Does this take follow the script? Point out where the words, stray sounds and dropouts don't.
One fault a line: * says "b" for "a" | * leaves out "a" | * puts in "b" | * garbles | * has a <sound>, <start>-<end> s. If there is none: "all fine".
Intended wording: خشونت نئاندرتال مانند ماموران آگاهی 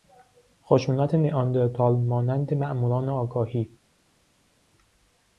all fine